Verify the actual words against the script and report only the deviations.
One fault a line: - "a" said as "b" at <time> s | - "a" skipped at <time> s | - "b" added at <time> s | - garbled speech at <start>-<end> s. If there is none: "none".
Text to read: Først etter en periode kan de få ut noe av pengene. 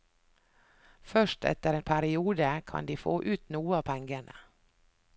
none